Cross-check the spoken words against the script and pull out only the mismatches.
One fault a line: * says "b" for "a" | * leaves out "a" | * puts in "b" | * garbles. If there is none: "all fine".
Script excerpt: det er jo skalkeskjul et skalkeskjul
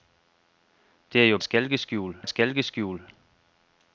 all fine